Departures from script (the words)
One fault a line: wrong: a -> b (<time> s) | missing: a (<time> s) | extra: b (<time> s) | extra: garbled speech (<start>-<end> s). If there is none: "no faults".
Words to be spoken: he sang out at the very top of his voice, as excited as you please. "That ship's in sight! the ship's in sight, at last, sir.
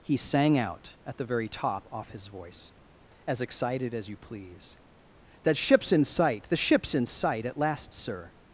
wrong: of -> off (1.9 s)